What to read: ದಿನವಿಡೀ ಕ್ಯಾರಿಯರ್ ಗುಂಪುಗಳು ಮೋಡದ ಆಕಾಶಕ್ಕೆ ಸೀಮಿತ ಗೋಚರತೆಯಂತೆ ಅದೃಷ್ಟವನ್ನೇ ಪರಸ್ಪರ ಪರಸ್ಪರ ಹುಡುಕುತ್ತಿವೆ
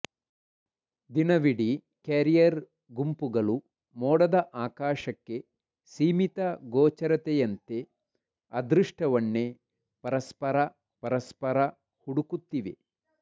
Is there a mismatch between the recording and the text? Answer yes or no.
no